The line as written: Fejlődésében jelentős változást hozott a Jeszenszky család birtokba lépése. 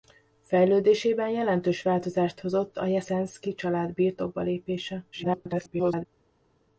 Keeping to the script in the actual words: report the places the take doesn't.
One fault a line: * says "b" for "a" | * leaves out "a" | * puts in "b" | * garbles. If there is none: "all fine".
* garbles